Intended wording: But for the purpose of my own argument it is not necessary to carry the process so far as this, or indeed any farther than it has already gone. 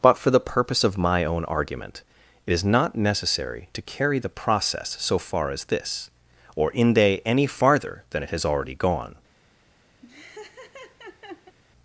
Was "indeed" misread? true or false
true